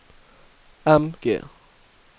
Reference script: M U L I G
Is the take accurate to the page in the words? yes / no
no